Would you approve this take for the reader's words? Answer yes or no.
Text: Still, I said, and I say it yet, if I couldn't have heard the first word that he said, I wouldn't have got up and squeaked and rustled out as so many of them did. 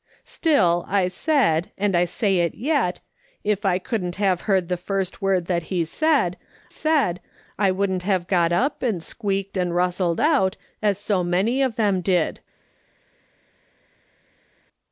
no